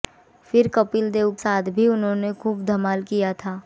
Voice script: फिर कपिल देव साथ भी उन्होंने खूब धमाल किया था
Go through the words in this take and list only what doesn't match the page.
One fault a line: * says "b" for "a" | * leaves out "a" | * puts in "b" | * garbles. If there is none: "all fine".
all fine